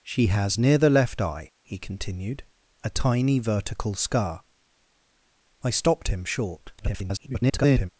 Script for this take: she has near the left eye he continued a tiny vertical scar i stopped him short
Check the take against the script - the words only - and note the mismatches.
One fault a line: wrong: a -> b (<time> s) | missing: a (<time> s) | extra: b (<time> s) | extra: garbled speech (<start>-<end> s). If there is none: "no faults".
extra: garbled speech (6.8-7.9 s)